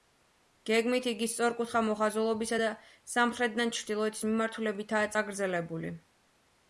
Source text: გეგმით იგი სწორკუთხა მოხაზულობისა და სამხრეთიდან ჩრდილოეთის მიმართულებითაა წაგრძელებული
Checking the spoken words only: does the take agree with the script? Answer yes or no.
yes